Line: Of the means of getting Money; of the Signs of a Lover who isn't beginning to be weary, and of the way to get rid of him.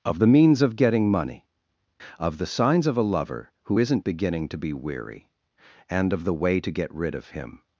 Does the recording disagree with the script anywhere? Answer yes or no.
no